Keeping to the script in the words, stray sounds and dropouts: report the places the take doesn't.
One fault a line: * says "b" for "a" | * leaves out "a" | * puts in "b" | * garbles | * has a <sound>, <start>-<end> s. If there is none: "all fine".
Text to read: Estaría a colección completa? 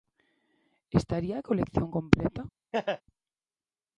* has a laugh, 2.7-3.0 s